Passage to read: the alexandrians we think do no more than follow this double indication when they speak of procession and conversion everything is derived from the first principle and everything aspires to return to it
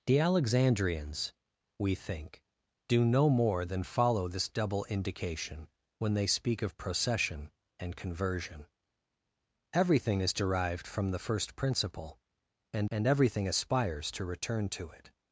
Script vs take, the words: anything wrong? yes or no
yes